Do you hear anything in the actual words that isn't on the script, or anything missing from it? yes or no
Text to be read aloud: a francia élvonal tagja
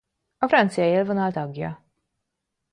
no